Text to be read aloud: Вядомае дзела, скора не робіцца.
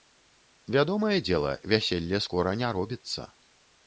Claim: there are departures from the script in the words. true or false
true